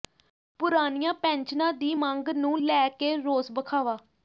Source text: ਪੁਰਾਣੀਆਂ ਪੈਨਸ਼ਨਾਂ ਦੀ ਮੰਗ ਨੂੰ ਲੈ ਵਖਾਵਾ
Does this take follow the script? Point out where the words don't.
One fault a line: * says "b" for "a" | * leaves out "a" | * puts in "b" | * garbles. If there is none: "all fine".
* puts in "ਕੇ ਰੋਸ"